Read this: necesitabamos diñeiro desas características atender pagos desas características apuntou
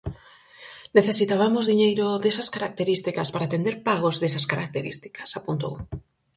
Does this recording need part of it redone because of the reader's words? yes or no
yes